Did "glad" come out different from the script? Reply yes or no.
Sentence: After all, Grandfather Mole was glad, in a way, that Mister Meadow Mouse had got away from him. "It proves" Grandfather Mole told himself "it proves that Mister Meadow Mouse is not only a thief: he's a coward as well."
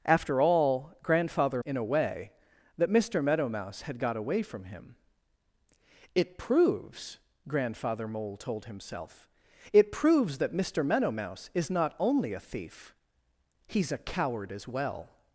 yes